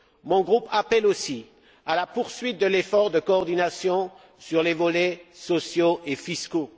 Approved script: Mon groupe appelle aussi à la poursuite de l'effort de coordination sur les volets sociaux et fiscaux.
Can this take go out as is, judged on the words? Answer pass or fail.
pass